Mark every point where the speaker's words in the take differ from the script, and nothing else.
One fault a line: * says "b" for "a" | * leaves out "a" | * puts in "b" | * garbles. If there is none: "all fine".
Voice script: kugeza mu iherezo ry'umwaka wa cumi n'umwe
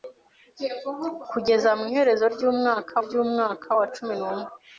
* puts in "ry'umwaka"